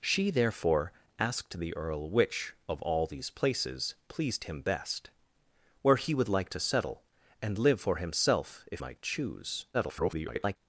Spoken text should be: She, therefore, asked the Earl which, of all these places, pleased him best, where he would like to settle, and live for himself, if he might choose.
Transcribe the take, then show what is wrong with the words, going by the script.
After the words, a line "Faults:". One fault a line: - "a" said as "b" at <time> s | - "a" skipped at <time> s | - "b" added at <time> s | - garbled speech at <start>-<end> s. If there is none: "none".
She, therefore, asked the Earl which, of all these places, pleased him best, where he would like to settle, and live for himself, if might choose. [garbled]
Faults:
- "he" skipped at 8.8 s
- garbled speech at 9.7-10.6 s